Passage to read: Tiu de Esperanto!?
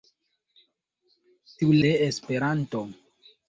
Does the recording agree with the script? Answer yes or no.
yes